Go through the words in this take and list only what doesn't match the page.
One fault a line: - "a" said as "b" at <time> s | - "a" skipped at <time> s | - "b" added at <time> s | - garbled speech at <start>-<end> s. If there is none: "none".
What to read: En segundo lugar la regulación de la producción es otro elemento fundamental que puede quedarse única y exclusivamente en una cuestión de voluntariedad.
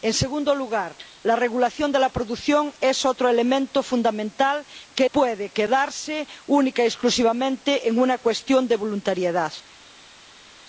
none